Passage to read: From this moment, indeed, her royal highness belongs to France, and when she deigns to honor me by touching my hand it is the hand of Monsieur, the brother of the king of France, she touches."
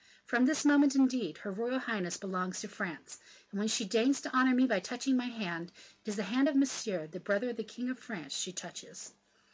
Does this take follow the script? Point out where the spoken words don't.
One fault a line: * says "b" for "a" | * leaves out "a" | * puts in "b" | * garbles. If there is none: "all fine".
all fine